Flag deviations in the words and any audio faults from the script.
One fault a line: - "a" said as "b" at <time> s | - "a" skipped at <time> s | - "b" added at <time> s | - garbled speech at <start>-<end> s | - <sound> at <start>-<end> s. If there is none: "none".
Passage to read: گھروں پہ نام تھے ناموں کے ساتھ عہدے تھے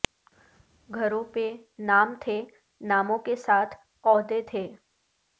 none